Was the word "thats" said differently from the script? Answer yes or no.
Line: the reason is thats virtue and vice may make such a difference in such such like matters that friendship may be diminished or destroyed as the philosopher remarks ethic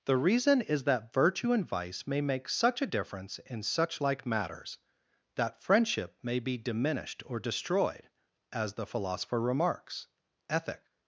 yes